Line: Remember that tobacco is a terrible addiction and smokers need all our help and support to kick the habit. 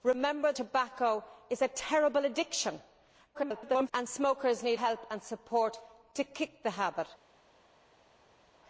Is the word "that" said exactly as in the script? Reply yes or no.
no